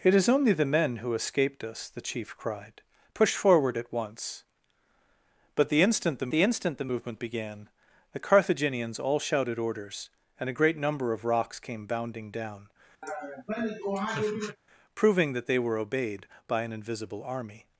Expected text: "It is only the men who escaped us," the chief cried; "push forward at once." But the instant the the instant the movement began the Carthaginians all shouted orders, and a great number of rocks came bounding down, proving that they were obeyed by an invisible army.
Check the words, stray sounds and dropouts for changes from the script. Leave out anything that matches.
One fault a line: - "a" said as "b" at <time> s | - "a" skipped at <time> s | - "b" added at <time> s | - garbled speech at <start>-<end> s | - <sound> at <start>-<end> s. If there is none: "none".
- laugh at 13.0-14.6 s